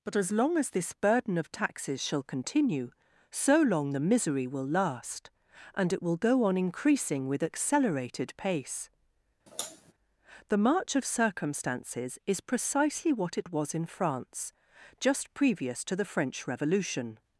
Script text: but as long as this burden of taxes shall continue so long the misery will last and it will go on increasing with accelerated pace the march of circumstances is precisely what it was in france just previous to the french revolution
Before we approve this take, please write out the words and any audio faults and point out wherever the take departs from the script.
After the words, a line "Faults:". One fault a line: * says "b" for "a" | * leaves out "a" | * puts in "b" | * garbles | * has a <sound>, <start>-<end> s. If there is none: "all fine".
but as long as this burden of taxes shall continue so long the misery will last and it will go on increasing with accelerated pace the march of circumstances is precisely what it was in france just previous to the french revolution
Faults:
* has a sigh, 9.5-9.9 s